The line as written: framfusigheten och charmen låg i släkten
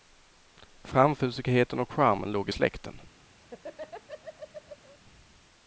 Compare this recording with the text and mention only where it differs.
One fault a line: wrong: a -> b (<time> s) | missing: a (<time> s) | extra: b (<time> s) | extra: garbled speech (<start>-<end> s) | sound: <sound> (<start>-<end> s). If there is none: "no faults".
sound: laugh (3.4-5.0 s)